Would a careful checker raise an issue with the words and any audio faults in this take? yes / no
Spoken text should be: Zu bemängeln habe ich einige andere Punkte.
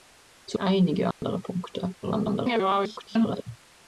yes